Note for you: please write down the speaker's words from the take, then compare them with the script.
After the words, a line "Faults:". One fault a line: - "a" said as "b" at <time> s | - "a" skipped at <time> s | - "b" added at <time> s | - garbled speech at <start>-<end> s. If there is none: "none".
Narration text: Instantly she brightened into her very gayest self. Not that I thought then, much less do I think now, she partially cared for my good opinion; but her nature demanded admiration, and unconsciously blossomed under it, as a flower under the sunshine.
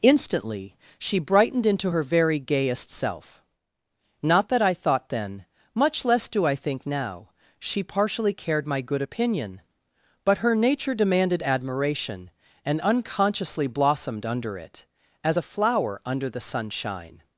Instantly she brightened into her very gayest self. Not that I thought then, much less do I think now, she partially cared my good opinion; but her nature demanded admiration, and unconsciously blossomed under it, as a flower under the sunshine.
Faults:
- "for" skipped at 8.7 s